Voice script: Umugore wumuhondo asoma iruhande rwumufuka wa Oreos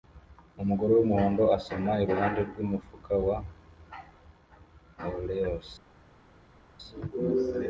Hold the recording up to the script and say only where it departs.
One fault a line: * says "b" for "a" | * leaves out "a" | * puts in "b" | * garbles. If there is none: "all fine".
all fine